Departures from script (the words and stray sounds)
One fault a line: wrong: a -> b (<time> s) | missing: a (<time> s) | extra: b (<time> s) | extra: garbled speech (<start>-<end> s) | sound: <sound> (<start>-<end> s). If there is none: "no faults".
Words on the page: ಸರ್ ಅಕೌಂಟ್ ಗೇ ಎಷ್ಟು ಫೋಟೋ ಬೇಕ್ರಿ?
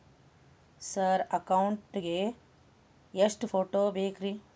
no faults